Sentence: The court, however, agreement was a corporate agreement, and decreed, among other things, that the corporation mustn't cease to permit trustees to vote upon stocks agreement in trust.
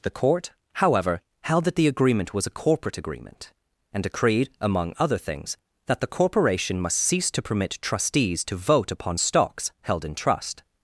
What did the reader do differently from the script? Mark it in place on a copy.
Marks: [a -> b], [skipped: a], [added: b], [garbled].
The court, however, [added: held that the] agreement was a corporate agreement, and decreed, among other things, that the corporation [mustn't -> must] cease to permit trustees to vote upon stocks [agreement -> held] in trust.